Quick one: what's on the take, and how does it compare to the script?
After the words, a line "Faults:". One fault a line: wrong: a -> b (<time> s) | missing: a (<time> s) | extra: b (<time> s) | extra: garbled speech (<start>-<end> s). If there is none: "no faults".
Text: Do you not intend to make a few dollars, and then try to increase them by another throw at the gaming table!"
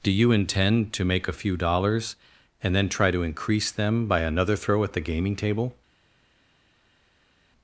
Do you intend to make a few dollars, and then try to increase them by another throw at the gaming table!"
Faults:
missing: not (0.3 s)